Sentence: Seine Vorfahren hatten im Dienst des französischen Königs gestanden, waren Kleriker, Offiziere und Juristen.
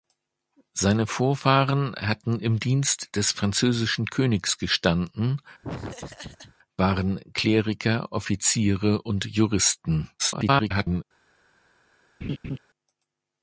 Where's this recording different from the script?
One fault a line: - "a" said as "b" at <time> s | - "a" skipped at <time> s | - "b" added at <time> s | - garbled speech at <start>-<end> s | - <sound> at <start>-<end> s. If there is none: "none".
- laugh at 5.6-6.6 s
- garbled speech at 10.2-11.0 s
- laugh at 12.2-12.6 s